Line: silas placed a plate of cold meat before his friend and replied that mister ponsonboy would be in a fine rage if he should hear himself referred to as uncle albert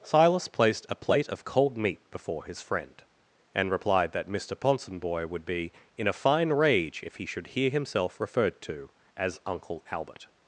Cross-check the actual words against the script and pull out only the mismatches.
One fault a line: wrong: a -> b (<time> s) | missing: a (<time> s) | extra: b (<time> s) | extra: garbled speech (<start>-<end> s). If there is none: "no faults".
no faults